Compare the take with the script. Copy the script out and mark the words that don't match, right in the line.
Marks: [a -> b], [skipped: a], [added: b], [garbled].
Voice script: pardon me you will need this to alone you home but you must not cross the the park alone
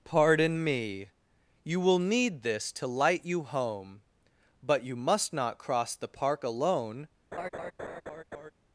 pardon me you will need this to [alone -> light] you home but you must not cross the [skipped: the] park alone